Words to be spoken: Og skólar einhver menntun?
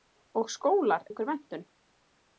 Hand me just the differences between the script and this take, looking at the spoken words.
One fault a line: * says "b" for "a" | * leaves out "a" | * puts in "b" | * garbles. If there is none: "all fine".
all fine